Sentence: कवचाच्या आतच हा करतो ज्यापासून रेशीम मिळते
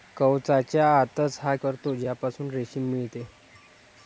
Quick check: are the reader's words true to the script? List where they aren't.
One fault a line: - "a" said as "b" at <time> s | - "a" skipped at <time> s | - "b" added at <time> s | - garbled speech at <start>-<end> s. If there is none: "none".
none